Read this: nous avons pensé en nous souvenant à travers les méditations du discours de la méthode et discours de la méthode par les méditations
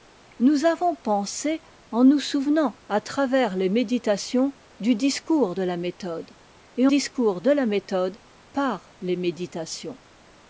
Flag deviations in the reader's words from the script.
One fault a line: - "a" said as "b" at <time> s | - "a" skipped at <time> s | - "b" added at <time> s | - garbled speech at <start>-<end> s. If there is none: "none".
none